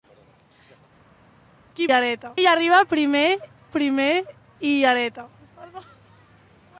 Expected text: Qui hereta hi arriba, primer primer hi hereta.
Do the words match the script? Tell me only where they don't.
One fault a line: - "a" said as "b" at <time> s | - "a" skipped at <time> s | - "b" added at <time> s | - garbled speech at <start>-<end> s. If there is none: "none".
none